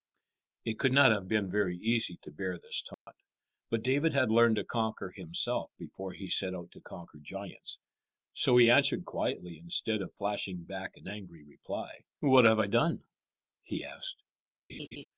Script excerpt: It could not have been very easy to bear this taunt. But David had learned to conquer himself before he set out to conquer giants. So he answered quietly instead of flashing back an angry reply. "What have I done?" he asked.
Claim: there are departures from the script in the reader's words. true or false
false